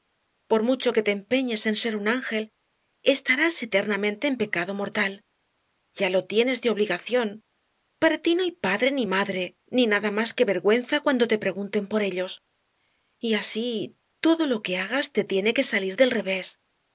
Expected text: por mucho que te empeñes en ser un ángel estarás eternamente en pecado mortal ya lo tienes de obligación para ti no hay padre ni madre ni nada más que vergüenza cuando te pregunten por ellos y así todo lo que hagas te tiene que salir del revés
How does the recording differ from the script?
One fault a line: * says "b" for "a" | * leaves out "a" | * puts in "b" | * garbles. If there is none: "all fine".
all fine